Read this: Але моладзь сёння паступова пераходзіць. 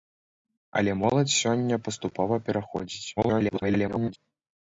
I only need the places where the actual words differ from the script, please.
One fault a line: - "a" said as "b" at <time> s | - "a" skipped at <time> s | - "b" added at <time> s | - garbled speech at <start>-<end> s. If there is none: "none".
- garbled speech at 3.2-4.2 s